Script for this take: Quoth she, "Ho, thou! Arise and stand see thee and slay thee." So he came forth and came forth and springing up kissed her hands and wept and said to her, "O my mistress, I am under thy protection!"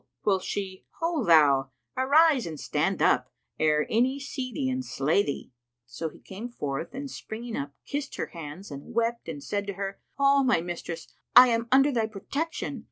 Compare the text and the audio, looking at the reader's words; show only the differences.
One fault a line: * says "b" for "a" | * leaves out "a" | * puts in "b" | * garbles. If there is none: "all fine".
* puts in "up ere any"
* leaves out "came forth and"